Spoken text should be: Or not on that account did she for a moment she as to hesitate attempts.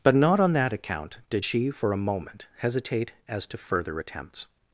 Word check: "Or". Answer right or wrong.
wrong